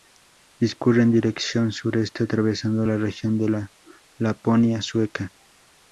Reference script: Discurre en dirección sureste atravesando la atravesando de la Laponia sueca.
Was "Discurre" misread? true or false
false